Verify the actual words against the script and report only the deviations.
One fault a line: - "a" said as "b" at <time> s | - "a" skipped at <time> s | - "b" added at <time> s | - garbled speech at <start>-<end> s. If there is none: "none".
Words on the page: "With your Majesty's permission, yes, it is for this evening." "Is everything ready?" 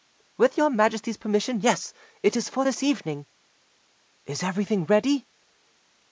none